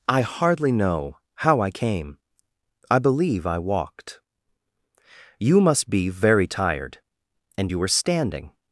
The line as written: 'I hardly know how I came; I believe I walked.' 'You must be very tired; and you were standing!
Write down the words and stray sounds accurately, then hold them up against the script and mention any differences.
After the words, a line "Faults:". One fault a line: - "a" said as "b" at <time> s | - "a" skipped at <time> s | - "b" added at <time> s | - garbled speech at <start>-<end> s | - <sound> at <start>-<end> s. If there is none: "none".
'I hardly know how I came; I believe I walked.' 'You must be very tired; and you were standing!
Faults:
none